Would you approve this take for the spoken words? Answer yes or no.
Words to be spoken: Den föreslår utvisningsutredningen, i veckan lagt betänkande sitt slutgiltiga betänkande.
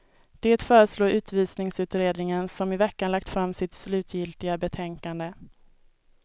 no